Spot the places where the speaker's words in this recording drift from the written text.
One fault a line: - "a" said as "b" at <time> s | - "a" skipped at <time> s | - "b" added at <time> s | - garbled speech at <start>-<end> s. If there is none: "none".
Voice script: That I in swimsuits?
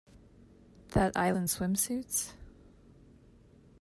none